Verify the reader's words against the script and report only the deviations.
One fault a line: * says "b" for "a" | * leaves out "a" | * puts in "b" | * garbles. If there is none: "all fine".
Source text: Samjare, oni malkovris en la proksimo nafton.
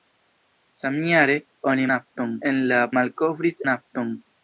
* says "nafton" for "malkovris"
* says "malkovris" for "proksimo"